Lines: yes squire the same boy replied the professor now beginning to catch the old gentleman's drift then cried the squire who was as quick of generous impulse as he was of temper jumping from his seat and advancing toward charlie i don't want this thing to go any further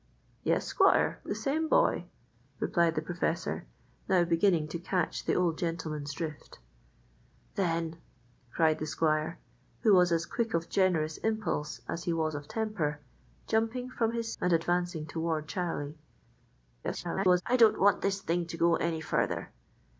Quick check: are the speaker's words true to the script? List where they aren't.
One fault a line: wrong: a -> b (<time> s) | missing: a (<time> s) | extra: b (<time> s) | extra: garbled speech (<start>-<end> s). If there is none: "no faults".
missing: seat (14.3 s)
extra: garbled speech (16.8-17.4 s)